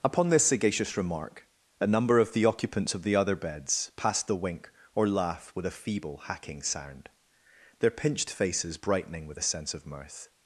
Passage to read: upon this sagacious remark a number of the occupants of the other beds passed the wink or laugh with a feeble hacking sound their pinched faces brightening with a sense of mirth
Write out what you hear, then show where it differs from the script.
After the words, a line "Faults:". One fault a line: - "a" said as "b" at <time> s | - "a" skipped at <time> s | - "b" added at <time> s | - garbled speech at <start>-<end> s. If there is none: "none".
upon this sagacious remark a number of the occupants of the other beds passed the wink or laugh with a feeble hacking sound their pinched faces brightening with a sense of mirth
Faults:
none